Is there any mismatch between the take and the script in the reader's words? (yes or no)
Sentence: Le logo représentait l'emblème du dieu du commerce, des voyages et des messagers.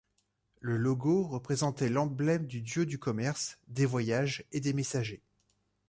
no